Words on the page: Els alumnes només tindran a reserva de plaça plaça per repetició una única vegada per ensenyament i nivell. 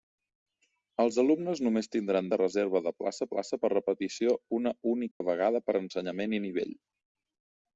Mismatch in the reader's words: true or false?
false